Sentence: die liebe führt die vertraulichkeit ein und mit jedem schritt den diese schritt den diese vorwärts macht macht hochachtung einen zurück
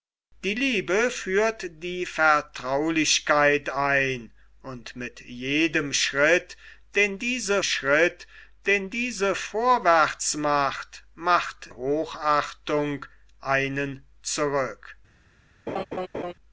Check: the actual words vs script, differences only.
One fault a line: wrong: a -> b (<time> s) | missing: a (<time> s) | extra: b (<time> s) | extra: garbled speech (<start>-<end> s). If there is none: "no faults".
no faults